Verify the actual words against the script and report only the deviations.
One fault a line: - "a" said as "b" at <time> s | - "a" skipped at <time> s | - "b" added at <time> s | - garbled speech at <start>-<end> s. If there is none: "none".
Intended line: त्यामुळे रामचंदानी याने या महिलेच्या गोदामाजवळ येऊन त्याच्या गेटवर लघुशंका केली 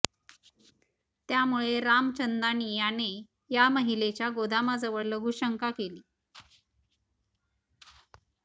- "येऊन त्याच्या गेटवर" skipped at 5.0 s